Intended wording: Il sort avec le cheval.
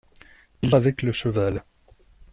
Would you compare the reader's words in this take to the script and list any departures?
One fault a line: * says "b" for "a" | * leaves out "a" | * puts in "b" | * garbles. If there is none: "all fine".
* leaves out "sort"